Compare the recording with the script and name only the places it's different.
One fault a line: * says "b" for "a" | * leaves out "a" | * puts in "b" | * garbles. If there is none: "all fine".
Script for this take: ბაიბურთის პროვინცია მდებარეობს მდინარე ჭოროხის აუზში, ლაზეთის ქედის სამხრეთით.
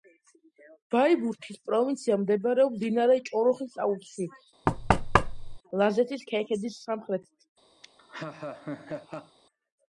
all fine